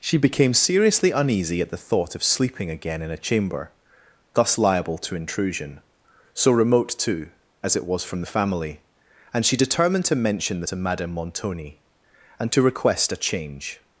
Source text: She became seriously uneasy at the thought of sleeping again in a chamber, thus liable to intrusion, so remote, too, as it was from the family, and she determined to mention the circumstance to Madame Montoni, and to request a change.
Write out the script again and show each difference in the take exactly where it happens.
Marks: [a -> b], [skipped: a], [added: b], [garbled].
She became seriously uneasy at the thought of sleeping again in a chamber, thus liable to intrusion, so remote, too, as it was from the family, and she determined to mention the [skipped: circumstance] to Madame Montoni, and to request a change.